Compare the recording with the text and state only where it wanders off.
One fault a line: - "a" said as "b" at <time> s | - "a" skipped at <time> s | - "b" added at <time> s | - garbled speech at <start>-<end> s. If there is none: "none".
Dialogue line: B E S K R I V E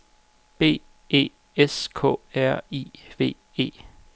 none